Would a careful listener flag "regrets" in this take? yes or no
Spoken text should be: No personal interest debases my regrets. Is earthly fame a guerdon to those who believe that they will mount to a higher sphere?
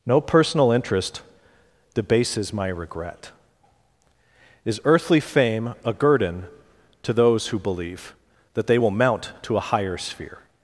yes